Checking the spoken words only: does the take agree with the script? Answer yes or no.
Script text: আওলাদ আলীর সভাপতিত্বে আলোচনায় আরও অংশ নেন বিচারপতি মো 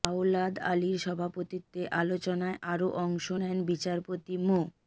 yes